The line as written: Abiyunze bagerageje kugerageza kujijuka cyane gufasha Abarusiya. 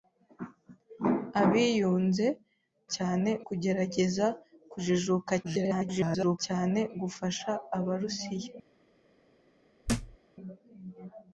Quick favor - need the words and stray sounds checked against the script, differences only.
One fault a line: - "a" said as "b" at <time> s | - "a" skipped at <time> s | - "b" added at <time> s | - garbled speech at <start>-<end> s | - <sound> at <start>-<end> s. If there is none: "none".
- "bagerageje" said as "cyane" at 2.9 s
- garbled speech at 5.4-6.4 s
- thud at 9.9-10.2 s